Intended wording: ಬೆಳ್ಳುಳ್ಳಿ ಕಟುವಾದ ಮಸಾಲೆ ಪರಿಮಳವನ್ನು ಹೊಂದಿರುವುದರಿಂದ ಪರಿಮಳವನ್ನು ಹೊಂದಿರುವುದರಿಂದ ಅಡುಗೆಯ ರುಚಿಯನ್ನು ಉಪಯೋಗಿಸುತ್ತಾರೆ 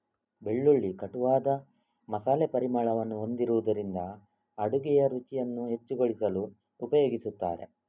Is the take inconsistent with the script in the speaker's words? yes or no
yes